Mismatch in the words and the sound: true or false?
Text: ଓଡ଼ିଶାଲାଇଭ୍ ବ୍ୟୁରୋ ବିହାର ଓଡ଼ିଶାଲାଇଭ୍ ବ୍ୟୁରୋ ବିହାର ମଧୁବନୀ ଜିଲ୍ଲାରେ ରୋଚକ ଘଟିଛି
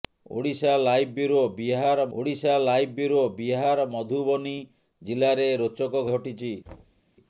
true